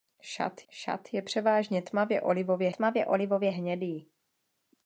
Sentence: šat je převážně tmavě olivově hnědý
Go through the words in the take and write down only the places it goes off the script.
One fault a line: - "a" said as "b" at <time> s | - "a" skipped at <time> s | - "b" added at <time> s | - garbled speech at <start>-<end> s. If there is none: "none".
- "šat" added at 0.7 s
- "tmavě olivově" added at 2.7 s